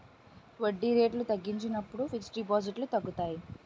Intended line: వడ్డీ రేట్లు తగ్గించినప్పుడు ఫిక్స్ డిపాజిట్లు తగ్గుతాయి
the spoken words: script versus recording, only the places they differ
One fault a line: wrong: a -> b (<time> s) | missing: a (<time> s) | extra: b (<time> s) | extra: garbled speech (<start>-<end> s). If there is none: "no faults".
no faults